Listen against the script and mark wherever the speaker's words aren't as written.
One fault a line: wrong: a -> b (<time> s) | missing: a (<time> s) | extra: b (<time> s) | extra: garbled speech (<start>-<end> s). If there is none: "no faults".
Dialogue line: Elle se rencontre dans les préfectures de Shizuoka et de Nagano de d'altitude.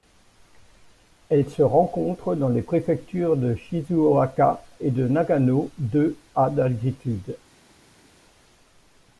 extra: à (6.4 s)